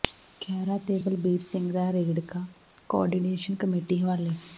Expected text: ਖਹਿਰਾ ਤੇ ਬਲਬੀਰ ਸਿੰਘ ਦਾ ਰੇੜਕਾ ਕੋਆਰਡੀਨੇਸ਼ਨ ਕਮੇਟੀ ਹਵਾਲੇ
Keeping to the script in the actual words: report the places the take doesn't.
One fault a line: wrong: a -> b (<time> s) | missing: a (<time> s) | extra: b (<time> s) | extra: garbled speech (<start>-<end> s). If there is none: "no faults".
no faults